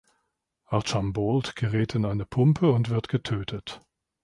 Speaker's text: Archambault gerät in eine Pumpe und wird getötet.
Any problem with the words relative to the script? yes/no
no